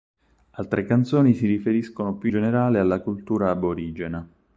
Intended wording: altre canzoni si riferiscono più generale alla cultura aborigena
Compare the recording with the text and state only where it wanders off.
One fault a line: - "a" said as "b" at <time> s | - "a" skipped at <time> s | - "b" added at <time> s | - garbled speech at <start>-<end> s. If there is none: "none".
none